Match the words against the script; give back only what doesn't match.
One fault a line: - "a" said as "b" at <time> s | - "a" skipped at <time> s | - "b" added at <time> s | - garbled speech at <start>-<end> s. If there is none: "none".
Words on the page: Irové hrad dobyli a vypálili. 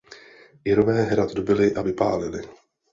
none